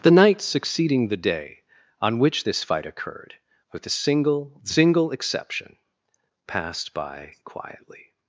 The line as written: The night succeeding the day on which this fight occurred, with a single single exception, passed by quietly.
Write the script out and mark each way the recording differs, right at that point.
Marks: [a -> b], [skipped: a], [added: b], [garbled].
The night succeeding the day on which this fight occurred, with a single single exception, passed by quietly.